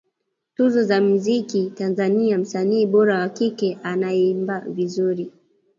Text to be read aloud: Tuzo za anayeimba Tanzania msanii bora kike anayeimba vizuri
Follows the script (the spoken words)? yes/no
no